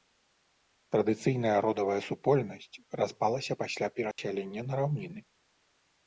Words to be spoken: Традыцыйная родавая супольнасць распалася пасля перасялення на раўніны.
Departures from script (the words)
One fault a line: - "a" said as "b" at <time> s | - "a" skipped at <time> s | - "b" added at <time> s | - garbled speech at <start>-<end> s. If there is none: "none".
none